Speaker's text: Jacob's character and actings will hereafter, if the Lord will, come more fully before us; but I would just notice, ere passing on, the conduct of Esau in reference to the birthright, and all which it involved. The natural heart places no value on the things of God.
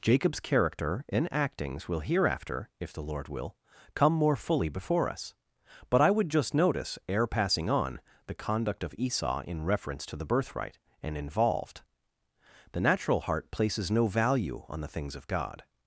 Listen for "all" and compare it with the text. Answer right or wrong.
wrong